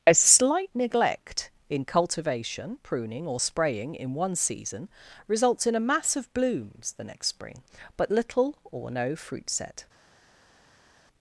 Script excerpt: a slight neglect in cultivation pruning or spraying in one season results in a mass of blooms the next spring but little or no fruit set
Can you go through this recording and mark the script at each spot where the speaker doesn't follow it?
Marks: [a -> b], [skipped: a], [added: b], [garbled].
a slight neglect in cultivation pruning or spraying in one season results in a mass of blooms the next spring but little or no fruit set